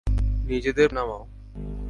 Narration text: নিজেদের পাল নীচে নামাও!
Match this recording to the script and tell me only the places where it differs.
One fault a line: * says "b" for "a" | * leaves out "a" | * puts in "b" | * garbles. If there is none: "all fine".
* leaves out "পাল নীচে"